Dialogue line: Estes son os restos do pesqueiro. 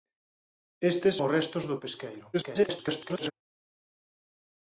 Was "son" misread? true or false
true